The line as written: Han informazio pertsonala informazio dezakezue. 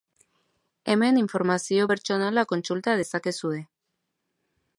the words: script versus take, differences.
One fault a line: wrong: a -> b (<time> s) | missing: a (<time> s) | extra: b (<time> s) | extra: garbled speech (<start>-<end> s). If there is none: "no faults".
wrong: Han -> Hemen (0.9 s)
wrong: informazio -> kontsulta (2.5 s)